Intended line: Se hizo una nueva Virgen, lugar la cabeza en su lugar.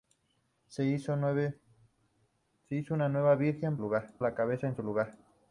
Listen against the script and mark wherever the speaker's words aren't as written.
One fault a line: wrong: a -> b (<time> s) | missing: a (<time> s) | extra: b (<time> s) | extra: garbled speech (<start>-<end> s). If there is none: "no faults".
no faults